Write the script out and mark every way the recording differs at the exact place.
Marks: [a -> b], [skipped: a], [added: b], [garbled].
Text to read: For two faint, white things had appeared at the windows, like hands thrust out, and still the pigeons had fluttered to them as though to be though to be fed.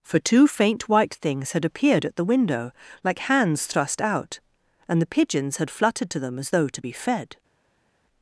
For two faint, white things had appeared at the [windows, -> window] like hands thrust out, and [skipped: still] the pigeons had fluttered to them as though to be [skipped: though to be] fed.